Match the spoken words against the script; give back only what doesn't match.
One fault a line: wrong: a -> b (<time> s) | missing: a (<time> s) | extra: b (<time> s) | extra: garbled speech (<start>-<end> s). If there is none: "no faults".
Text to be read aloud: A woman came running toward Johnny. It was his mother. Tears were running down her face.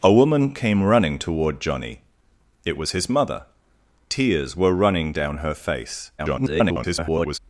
extra: garbled speech (6.2-7.4 s)